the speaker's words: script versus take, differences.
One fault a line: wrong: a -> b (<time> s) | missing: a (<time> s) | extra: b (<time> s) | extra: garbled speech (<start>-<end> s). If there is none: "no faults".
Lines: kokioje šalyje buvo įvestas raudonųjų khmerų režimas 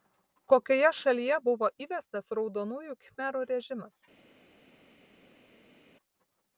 no faults